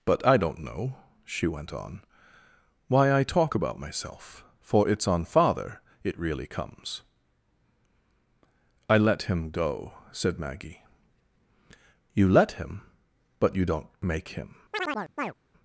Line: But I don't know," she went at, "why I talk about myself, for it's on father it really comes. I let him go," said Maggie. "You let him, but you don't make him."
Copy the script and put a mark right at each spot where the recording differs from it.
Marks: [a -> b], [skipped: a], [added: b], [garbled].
But I don't know," she went [at, -> on] "why I talk about myself, for it's on father it really comes. I let him go," said Maggie. "You let him, but you don't make him."